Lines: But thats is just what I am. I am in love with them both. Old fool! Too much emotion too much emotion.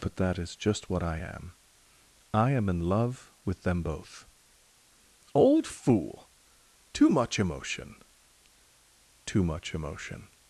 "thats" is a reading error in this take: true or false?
true